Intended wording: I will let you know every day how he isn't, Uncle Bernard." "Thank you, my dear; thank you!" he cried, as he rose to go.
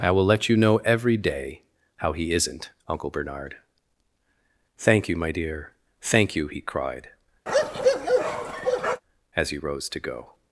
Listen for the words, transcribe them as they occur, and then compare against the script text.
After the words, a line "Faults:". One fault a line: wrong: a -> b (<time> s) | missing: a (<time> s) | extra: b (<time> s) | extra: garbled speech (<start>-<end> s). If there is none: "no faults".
I will let you know every day how he isn't, Uncle Bernard." "Thank you, my dear; thank you!" he cried, as he rose to go.
Faults:
no faults